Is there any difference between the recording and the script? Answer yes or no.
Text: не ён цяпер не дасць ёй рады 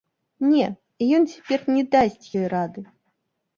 no